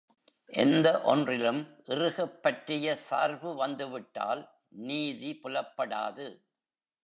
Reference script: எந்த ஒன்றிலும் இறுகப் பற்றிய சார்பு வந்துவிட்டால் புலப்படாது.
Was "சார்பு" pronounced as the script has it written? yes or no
yes